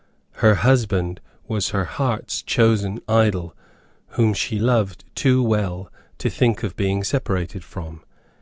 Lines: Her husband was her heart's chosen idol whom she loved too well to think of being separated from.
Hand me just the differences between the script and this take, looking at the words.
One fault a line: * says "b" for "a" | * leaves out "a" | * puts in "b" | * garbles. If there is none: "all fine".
all fine